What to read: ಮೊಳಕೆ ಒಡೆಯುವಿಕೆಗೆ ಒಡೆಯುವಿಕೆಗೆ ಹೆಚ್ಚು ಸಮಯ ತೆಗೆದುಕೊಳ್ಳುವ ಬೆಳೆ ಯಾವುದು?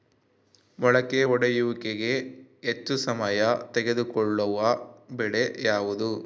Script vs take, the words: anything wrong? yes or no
yes